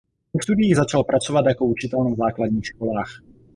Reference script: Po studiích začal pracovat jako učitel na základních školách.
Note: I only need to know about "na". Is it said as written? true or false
true